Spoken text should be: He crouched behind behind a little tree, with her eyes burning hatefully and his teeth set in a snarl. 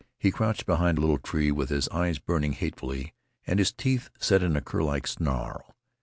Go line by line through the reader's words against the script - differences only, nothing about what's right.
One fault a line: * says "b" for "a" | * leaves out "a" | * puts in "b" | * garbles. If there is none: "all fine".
* leaves out "behind"
* says "his" for "her"
* puts in "curlike"